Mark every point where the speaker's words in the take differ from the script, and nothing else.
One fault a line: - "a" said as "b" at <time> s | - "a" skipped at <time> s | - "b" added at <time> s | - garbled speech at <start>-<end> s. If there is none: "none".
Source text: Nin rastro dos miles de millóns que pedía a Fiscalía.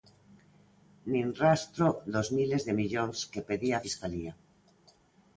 none